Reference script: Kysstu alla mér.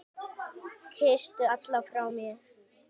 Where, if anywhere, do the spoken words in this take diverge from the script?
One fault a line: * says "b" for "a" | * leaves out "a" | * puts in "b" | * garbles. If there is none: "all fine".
* puts in "frá"